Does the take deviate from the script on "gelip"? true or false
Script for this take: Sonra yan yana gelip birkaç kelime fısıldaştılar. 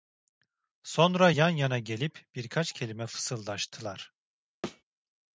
false